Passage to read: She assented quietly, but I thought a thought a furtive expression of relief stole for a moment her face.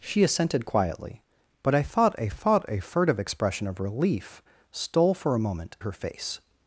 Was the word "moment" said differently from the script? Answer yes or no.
no